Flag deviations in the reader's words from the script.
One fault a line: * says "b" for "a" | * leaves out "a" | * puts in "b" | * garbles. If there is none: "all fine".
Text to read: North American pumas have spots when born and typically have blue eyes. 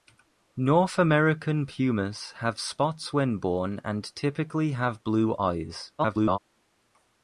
* garbles